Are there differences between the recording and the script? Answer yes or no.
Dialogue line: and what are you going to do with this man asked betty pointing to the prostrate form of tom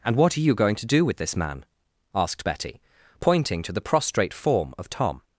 no